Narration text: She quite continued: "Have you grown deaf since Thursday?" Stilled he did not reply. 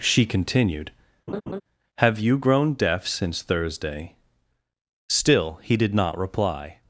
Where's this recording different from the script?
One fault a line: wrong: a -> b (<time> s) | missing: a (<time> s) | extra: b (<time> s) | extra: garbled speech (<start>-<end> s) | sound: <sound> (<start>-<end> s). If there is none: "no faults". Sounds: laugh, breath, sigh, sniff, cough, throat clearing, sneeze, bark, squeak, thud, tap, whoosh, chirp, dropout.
missing: quite (0.2 s)
sound: laugh (1.3-1.6 s)
wrong: Stilled -> Still (5.1 s)